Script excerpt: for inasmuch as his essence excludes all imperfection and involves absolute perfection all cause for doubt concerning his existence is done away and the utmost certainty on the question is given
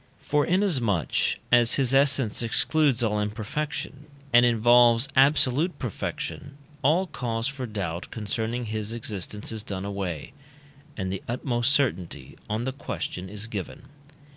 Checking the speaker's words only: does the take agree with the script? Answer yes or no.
yes